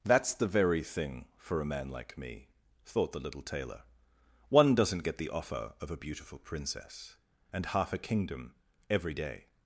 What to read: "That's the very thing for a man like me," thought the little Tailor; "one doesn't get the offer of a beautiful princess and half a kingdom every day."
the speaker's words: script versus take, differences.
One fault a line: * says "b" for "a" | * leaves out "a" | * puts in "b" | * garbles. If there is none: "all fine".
all fine